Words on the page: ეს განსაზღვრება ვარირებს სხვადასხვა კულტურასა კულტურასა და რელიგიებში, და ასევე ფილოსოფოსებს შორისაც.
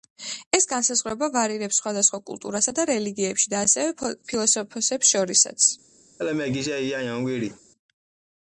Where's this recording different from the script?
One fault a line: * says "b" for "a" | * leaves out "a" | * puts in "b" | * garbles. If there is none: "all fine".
* leaves out "კულტურასა"